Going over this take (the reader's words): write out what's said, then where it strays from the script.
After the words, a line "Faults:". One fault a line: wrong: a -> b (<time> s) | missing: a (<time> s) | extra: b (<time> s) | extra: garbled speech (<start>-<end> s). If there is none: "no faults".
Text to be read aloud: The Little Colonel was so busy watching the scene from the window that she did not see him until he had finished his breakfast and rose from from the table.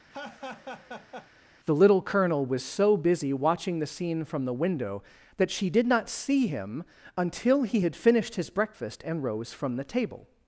The Little Colonel was so busy watching the scene from the window that she did not see him until he had finished his breakfast and rose from the table.
Faults:
missing: from (9.7 s)